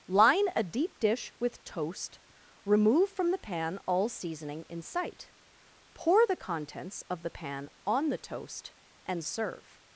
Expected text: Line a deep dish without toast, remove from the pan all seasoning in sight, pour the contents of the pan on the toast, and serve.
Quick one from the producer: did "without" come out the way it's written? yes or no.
no